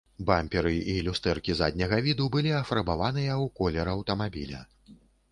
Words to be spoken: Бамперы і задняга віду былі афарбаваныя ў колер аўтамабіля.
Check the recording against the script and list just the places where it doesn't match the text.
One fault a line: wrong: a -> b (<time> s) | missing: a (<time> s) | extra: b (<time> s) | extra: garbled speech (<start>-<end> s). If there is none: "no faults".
extra: люстэркі (1.1 s)